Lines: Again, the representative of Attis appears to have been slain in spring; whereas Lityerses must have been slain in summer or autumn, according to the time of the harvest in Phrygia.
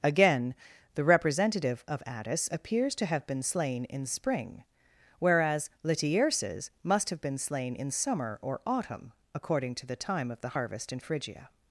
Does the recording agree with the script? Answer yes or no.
yes